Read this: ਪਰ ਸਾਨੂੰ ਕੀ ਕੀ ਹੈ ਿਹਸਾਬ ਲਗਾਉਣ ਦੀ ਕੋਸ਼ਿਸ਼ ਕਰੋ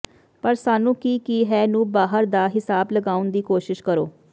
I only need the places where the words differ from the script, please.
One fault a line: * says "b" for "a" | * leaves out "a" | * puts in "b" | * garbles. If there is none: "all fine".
* puts in "ਨੂੰ ਬਾਹਰ ਦਾ"